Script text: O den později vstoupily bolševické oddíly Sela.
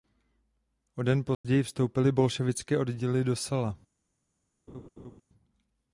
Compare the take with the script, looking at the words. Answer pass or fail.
fail